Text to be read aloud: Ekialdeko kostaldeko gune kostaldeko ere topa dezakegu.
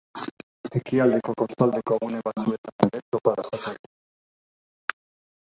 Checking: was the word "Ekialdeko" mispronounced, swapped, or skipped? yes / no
no